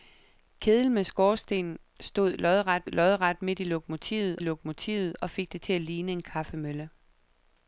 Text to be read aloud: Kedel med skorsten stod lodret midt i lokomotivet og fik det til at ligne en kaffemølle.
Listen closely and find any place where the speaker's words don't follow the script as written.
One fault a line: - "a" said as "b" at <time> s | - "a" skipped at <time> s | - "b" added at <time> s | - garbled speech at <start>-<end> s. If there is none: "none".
- "lodret" added at 2.8 s
- "lokomotivet" added at 4.4 s